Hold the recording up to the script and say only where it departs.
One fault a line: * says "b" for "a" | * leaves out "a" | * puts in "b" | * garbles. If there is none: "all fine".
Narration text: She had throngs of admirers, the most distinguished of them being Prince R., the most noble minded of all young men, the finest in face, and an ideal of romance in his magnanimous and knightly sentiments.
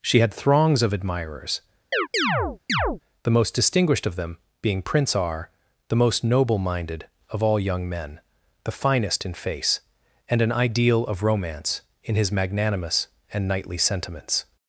all fine